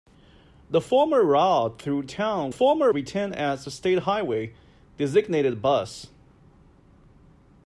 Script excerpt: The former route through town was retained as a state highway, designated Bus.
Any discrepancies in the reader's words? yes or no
yes